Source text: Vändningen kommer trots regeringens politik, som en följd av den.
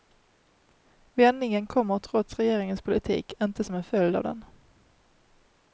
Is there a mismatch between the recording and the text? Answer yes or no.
yes